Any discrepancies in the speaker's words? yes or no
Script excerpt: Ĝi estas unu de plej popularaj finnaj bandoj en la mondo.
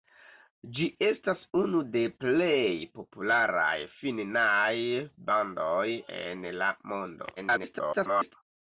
yes